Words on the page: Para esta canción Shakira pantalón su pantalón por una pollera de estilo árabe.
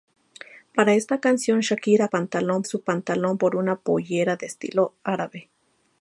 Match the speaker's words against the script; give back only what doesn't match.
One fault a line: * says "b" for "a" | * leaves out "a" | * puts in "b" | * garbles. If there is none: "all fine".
all fine